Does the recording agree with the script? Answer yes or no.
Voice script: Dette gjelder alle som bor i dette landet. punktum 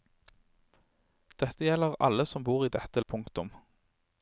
no